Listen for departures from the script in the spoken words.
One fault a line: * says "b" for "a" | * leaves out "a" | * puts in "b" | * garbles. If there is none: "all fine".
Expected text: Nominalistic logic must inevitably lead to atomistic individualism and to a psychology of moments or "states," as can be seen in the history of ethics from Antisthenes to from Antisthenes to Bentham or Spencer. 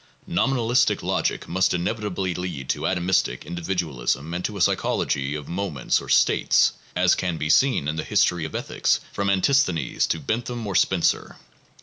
* leaves out "from Antisthenes to"